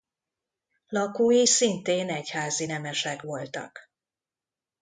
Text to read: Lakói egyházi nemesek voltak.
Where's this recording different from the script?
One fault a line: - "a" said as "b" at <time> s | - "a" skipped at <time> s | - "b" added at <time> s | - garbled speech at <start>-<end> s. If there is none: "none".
- "szintén" added at 1.4 s